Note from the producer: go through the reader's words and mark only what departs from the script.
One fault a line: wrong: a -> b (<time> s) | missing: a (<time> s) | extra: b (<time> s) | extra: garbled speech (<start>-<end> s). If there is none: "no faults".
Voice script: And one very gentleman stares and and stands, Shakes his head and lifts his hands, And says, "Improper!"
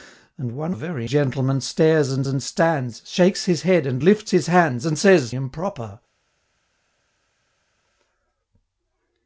no faults